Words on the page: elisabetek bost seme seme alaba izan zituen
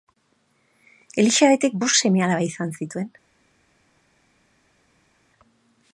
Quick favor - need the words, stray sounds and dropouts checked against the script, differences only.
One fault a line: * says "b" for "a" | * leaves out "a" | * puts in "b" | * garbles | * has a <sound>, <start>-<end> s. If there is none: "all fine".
* leaves out "seme"